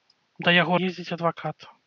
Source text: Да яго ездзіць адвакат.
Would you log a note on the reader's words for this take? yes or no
no